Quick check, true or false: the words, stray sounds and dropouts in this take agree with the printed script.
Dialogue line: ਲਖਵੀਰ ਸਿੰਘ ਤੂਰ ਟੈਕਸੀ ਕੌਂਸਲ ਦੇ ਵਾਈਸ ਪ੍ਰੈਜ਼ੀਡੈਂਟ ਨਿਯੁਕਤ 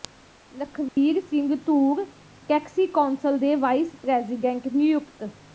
false